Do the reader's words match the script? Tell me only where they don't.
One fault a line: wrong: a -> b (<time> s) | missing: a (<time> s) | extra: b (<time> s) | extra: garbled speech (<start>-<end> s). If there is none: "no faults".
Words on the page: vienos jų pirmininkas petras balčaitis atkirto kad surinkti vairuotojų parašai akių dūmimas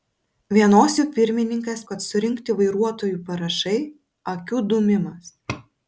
missing: petras balčaitis atkirto (1.8 s)